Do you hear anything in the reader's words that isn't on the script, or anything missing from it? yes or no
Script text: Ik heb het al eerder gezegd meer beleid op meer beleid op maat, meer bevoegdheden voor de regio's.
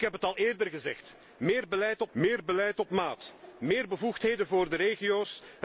no